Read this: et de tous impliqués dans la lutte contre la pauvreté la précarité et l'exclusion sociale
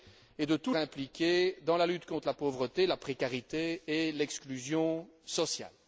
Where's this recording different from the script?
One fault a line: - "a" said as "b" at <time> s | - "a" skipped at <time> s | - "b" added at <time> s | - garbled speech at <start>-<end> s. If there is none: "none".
none